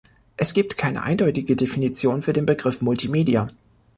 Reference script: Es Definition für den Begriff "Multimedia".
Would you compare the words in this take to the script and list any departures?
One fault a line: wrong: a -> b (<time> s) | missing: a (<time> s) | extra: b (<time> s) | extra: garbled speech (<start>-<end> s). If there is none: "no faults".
extra: gibt keine eindeutige (0.5 s)